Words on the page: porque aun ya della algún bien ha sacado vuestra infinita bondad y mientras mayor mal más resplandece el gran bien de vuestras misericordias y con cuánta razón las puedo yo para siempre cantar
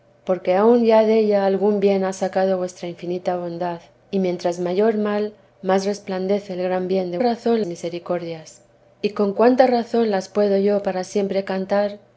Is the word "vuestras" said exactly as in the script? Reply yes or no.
no